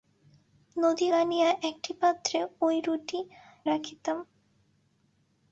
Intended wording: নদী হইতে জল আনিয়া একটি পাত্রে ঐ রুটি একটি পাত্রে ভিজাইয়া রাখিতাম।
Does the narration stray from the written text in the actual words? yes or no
yes